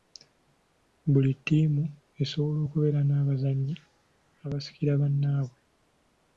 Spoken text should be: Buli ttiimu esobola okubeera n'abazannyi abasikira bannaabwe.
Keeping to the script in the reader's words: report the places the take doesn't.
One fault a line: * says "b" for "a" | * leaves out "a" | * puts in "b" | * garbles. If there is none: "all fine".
all fine